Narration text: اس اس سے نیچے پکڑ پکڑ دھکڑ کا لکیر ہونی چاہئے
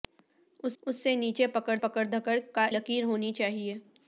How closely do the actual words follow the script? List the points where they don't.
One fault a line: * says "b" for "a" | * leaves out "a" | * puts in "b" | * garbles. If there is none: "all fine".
all fine